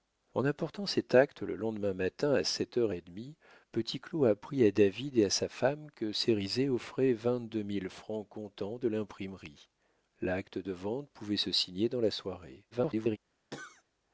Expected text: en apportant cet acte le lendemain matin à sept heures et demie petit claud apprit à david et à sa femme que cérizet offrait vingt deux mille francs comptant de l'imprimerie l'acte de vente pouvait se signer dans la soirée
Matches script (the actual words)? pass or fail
fail